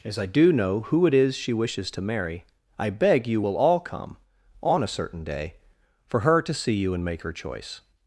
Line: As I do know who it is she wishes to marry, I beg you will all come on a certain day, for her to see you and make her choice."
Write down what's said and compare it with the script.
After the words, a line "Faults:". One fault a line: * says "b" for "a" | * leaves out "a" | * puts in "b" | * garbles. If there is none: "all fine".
As I do know who it is she wishes to marry, I beg you will all come on a certain day, for her to see you and make her choice."
Faults:
all fine